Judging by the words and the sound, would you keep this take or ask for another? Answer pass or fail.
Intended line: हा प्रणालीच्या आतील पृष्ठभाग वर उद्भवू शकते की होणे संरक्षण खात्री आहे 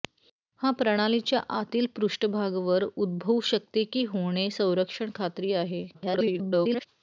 fail